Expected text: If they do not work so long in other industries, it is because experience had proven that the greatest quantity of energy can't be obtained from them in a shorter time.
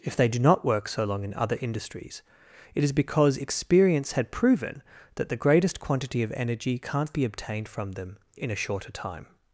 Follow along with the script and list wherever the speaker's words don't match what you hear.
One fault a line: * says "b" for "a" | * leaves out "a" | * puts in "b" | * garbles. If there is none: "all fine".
all fine